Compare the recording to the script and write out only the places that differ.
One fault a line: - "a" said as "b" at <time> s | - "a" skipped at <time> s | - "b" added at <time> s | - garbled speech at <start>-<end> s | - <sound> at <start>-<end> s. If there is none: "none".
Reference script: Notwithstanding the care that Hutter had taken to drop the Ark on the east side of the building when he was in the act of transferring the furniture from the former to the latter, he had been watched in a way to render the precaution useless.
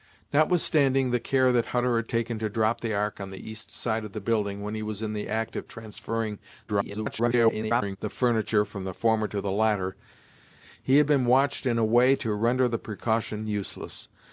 - garbled speech at 6.7-8.0 s